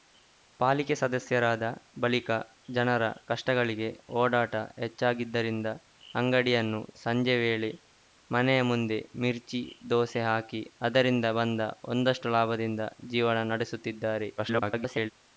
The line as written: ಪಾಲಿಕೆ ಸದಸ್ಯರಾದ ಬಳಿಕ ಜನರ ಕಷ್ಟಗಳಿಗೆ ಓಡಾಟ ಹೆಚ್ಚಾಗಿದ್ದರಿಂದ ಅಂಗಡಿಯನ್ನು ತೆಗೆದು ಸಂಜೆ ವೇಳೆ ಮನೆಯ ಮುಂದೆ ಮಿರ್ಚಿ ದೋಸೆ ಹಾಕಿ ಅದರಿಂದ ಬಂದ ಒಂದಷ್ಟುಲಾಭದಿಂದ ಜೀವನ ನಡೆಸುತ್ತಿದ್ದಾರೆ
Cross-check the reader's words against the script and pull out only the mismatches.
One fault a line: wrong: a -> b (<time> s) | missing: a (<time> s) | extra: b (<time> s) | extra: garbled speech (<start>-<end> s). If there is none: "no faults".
missing: ತೆಗೆದು (6.8 s)
extra: garbled speech (14.4-15.1 s)